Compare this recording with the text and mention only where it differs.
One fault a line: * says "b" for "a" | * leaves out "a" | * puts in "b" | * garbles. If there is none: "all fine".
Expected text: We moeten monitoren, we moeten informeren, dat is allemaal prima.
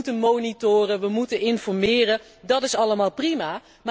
all fine